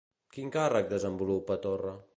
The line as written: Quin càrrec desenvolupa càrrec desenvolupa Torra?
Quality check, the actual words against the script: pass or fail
fail